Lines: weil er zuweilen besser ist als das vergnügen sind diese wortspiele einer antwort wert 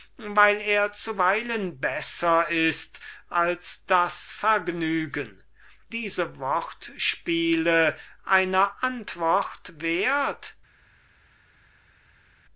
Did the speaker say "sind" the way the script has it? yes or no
no